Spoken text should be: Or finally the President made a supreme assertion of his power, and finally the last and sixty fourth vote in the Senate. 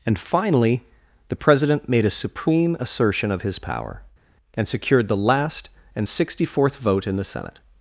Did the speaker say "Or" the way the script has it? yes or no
no